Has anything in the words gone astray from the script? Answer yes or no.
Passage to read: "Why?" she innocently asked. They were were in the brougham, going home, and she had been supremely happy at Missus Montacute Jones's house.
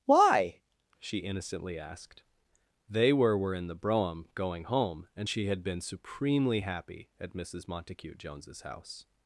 no